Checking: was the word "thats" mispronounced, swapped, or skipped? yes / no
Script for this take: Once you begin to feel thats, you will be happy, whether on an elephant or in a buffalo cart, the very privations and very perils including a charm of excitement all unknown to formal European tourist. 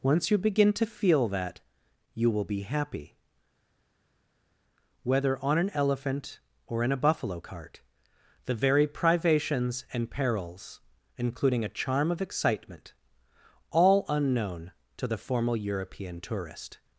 yes